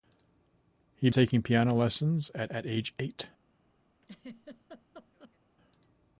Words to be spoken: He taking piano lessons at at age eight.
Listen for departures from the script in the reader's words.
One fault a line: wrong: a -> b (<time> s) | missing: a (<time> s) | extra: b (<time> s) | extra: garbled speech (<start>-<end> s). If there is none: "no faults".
no faults